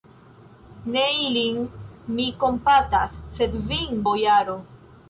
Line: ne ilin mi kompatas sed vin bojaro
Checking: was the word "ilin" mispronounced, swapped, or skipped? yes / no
no